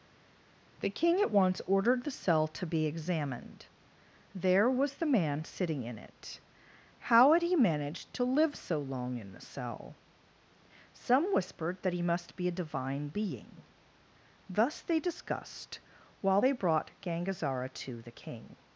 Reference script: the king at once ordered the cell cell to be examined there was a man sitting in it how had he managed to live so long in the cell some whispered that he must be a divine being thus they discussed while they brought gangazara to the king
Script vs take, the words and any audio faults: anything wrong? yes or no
yes